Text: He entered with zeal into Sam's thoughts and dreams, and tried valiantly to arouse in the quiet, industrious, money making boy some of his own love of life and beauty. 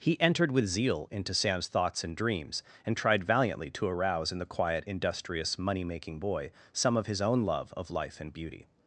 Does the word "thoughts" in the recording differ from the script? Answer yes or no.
no